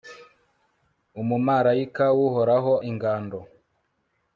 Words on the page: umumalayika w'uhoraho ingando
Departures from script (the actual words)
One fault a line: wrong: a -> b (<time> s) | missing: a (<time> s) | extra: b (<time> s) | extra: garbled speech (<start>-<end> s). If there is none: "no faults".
no faults